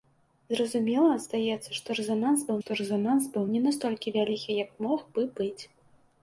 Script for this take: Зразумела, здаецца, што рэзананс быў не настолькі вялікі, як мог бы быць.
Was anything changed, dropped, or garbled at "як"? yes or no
no